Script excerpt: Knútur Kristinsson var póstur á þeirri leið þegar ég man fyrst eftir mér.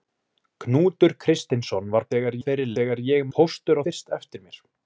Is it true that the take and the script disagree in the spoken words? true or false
true